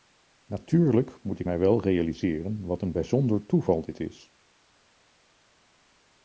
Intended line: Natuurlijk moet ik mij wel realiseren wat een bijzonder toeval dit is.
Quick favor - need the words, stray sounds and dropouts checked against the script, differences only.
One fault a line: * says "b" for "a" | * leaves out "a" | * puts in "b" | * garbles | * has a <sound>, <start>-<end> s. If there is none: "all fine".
all fine